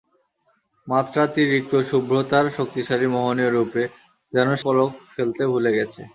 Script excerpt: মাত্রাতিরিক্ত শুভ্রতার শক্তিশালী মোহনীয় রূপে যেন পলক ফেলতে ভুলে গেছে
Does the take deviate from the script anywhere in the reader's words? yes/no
no